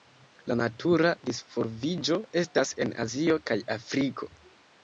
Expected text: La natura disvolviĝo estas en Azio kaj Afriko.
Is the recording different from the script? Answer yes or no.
no